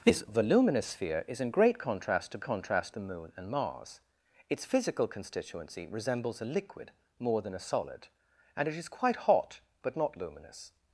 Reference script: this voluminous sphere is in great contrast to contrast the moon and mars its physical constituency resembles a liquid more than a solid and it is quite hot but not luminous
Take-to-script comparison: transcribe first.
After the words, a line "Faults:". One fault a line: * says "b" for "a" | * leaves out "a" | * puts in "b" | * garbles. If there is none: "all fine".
this voluminous sphere is in great contrast to contrast the moon and mars its physical constituency resembles a liquid more than a solid and it is quite hot but not luminous
Faults:
all fine